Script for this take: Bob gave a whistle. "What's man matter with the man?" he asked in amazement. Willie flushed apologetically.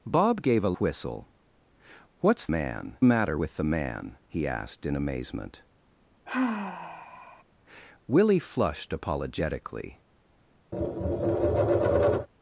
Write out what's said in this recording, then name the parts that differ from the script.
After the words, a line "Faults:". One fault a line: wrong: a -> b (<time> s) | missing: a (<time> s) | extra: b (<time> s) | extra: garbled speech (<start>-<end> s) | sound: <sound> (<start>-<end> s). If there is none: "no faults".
Bob gave a whistle. "What's man matter with the man?" he asked in amazement. Willie flushed apologetically.
Faults:
sound: sigh (6.3-7.4 s)
sound: tap (10.7-12.3 s)